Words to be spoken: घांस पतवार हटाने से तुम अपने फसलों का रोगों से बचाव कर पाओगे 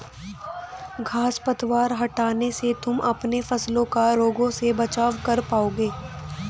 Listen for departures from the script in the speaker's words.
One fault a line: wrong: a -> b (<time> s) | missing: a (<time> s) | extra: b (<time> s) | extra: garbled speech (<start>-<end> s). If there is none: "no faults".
no faults